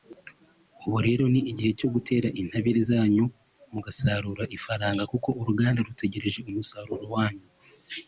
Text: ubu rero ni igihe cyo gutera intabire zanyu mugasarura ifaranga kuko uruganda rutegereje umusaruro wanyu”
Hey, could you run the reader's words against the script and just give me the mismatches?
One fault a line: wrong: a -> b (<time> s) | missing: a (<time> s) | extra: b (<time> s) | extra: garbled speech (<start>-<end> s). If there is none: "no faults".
no faults